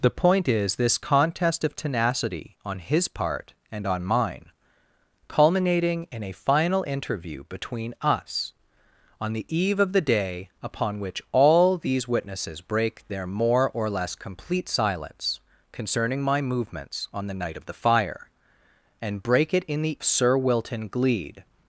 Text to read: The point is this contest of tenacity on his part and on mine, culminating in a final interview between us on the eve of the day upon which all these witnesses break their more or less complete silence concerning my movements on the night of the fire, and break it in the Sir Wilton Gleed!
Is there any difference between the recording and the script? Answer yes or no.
no